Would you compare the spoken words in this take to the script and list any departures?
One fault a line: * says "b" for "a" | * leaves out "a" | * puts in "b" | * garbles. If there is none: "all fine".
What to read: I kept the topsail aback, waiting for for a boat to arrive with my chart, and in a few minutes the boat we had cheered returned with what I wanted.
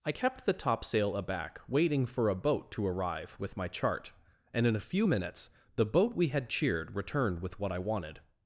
* leaves out "for"